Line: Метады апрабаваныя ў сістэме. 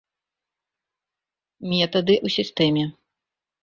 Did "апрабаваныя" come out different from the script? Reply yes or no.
yes